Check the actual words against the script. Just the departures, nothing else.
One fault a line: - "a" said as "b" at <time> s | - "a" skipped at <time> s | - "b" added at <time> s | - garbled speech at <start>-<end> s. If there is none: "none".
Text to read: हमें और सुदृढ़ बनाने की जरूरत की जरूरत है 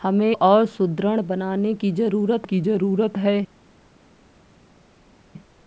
none